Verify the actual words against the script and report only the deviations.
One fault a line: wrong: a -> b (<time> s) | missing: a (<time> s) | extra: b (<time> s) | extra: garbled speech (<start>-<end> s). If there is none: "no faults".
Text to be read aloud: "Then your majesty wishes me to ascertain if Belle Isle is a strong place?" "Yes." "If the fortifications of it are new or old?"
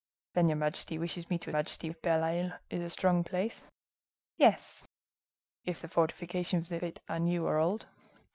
wrong: ascertain -> majesty (1.5 s)